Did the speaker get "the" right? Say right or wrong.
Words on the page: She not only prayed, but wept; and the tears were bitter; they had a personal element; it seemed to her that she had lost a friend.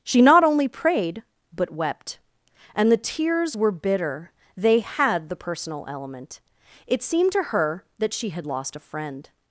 right